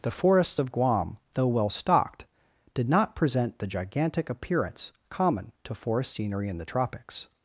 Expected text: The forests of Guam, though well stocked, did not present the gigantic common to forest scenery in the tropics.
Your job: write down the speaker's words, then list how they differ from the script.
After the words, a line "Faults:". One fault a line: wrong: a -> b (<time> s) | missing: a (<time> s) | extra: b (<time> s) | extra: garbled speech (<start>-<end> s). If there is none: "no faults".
The forests of Guam, though well stocked, did not present the gigantic appearance common to forest scenery in the tropics.
Faults:
extra: appearance (4.3 s)